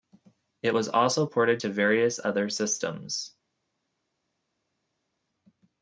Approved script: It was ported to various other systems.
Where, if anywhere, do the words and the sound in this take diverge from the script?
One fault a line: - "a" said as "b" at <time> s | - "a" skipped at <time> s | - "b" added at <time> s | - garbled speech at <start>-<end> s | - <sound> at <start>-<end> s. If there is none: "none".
- "also" added at 0.9 s